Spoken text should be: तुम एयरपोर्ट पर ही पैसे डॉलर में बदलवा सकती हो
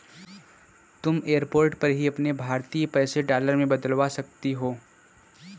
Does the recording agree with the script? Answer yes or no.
no